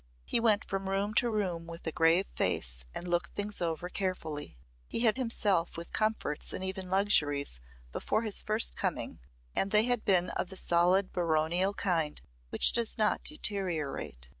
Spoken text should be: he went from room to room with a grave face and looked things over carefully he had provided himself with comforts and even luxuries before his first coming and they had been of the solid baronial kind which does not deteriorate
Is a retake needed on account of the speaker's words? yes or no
yes